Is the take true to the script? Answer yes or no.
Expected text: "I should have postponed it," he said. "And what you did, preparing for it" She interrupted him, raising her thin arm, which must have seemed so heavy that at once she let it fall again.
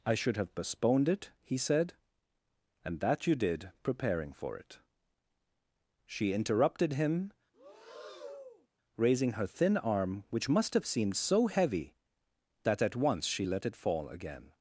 no